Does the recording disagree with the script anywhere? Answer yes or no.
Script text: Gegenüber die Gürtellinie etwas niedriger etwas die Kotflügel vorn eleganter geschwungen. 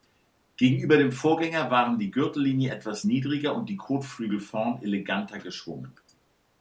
yes